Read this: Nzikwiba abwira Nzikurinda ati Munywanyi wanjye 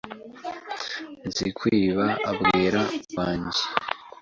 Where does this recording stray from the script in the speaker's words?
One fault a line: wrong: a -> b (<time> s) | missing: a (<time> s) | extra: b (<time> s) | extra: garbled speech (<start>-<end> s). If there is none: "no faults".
missing: Nzikurinda ati Munywanyi (2.8 s)